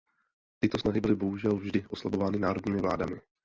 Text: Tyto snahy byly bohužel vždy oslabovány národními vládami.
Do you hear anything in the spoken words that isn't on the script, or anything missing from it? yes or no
no